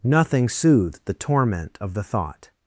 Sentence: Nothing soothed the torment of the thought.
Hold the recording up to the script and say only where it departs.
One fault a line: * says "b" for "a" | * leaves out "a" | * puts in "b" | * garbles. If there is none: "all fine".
all fine